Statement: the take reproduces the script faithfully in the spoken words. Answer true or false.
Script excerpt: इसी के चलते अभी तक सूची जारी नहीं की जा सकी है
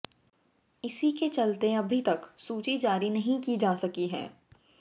true